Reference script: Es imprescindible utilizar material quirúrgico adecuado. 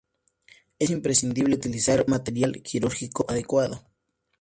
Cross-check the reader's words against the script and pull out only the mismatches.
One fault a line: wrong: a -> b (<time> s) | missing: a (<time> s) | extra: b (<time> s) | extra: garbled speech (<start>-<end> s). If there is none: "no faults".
no faults